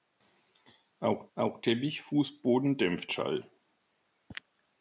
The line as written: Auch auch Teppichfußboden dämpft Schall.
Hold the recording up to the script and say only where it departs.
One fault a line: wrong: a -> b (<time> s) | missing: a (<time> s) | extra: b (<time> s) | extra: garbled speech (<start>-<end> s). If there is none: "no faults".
no faults